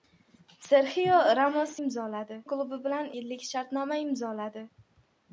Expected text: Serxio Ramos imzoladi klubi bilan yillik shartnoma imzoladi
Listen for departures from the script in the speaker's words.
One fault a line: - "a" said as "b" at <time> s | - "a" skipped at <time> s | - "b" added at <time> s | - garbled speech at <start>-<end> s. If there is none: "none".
none